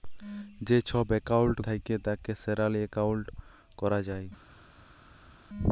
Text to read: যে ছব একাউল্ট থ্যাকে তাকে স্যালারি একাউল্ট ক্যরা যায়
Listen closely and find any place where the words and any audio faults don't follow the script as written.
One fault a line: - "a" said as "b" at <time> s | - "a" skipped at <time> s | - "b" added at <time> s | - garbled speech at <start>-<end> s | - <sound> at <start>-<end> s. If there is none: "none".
none